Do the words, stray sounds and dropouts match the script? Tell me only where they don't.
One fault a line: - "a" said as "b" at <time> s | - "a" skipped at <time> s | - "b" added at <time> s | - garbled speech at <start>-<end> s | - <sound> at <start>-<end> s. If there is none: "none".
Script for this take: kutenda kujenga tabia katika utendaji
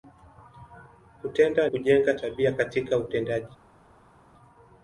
none